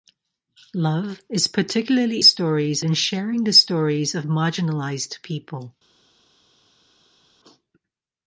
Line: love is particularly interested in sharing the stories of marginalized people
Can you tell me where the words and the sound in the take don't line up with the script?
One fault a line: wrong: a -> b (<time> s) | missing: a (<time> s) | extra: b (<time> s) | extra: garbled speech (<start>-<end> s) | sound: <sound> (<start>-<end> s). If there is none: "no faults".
wrong: interested -> stories (2.2 s)